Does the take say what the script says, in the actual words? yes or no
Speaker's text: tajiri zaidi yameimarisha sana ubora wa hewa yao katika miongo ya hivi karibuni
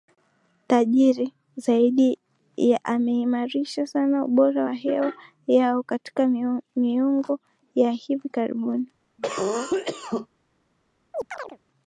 yes